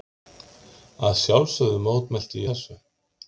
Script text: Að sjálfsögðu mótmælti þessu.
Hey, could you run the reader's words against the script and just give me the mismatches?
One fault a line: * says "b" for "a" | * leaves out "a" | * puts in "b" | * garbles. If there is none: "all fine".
all fine